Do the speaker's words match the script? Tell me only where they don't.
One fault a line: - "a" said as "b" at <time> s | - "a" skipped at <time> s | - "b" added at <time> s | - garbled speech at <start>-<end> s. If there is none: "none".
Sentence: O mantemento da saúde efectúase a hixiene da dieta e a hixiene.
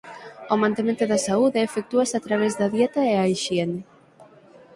- "hixiene" said as "través" at 2.3 s